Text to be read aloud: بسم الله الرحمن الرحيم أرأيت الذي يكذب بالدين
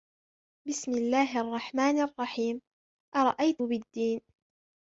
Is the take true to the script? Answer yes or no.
no